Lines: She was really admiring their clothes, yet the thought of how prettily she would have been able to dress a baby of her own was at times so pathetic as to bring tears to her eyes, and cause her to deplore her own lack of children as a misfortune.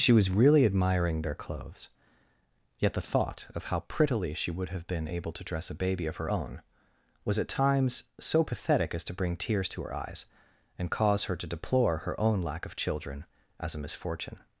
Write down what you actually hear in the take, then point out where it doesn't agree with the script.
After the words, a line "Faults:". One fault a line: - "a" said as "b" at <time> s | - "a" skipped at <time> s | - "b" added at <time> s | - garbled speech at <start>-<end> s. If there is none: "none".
She was really admiring their clothes, yet the thought of how prettily she would have been able to dress a baby of her own was at times so pathetic as to bring tears to her eyes, and cause her to deplore her own lack of children as a misfortune.
Faults:
none